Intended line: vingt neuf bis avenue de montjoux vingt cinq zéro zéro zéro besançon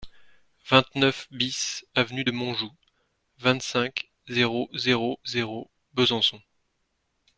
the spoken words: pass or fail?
pass